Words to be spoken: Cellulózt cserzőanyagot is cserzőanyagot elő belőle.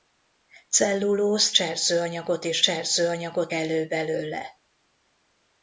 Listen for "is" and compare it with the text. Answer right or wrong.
right